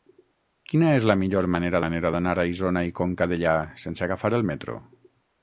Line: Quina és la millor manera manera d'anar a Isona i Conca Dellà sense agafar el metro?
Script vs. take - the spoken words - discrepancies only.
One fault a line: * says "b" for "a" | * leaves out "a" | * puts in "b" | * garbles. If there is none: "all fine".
all fine